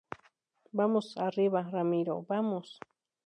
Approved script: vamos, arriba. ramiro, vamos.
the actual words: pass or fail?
pass